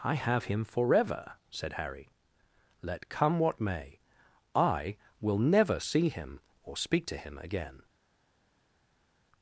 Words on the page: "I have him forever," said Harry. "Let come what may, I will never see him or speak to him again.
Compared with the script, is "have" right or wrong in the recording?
right